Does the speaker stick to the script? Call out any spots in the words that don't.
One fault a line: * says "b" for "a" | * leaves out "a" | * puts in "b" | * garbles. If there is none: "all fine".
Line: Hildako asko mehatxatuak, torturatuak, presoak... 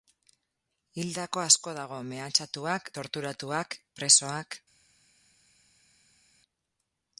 * puts in "dago"